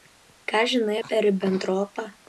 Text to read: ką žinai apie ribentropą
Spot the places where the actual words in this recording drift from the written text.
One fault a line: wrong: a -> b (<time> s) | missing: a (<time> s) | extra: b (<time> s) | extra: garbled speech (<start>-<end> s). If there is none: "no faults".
no faults